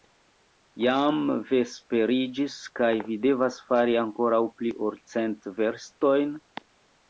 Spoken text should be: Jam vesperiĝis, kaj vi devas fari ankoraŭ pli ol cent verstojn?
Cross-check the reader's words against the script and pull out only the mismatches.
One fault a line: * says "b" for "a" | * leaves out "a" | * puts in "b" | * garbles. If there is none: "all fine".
all fine